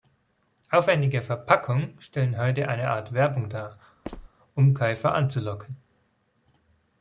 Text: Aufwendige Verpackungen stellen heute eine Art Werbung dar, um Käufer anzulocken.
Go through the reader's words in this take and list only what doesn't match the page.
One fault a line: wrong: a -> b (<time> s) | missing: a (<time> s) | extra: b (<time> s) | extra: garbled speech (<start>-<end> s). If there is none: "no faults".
no faults